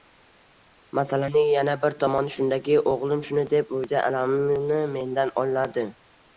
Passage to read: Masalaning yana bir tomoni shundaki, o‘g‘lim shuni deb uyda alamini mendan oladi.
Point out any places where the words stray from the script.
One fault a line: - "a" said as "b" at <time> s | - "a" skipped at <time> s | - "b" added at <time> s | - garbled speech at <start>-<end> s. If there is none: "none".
none